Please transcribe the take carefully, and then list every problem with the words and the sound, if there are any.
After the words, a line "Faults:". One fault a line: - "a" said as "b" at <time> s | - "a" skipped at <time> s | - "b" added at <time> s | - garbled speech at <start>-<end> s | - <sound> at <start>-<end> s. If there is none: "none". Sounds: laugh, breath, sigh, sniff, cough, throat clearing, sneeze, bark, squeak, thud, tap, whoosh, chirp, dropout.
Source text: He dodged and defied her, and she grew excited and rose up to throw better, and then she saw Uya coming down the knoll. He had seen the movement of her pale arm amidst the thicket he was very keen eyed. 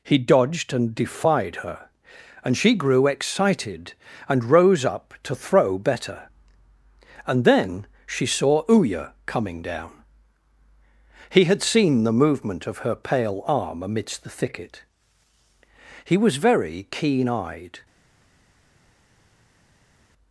He dodged and defied her, and she grew excited and rose up to throw better, and then she saw Uya coming down. He had seen the movement of her pale arm amidst the thicket he was very keen eyed.
Faults:
- "the knoll" skipped at 10.0 s